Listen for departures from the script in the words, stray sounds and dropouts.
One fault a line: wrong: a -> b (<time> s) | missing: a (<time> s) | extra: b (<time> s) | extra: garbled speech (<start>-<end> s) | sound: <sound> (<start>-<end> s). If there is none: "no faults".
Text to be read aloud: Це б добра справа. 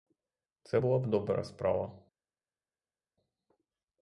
extra: була (0.8 s)